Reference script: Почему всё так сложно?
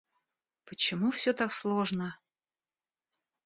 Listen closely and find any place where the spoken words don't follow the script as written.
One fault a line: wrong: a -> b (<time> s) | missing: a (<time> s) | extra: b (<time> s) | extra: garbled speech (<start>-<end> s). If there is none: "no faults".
no faults